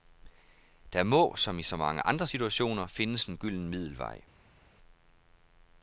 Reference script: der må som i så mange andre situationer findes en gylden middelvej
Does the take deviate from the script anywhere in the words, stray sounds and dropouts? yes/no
no